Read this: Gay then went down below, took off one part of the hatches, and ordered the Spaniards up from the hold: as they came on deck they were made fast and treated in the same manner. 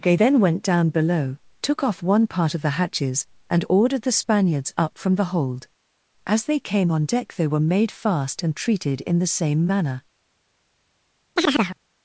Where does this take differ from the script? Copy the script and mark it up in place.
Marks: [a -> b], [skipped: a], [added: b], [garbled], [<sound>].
Gay then went down below, took off one part of the hatches, and ordered the Spaniards up from the hold: as they came on deck they were made fast and treated in the same manner. [chirp]